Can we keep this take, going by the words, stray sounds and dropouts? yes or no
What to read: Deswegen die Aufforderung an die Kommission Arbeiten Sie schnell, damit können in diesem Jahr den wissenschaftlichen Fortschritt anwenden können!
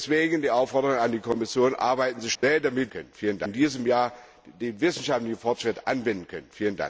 no